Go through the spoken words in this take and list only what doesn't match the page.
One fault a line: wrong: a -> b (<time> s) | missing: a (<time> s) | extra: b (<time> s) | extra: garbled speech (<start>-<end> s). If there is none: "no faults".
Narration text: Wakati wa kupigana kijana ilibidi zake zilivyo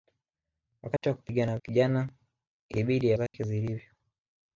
no faults